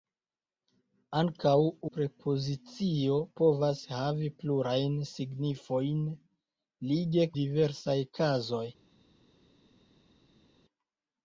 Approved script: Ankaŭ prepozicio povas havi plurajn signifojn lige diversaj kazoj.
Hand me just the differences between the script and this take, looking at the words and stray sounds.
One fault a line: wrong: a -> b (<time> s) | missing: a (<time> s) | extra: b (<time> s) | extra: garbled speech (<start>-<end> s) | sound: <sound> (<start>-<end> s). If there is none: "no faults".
no faults